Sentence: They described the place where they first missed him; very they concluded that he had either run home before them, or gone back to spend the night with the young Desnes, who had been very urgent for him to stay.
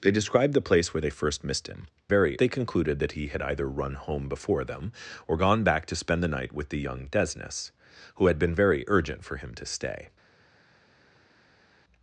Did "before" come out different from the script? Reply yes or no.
no